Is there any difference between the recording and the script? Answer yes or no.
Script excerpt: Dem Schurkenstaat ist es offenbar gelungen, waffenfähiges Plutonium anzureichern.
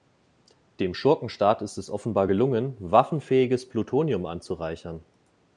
no